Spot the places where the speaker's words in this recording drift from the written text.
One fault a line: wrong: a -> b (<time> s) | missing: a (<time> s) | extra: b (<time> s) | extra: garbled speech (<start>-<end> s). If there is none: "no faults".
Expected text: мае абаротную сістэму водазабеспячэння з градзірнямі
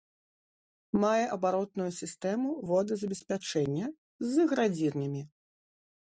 no faults